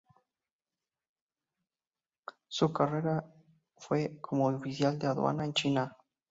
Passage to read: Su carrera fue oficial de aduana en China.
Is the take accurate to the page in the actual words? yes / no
no